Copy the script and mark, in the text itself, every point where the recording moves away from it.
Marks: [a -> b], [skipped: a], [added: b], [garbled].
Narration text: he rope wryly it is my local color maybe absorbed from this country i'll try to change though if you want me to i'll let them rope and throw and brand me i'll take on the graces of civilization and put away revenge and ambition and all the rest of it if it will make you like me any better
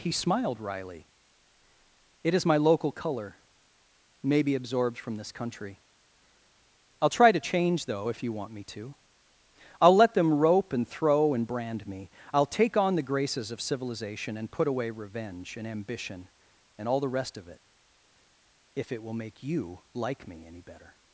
he [rope -> smiled] wryly it is my local color maybe absorbed from this country i'll try to change though if you want me to i'll let them rope and throw and brand me i'll take on the graces of civilization and put away revenge and ambition and all the rest of it if it will make you like me any better